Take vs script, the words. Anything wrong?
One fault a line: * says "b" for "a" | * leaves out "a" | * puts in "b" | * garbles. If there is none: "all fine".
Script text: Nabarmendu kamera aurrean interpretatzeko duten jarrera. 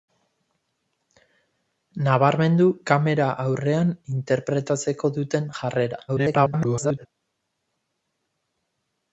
* garbles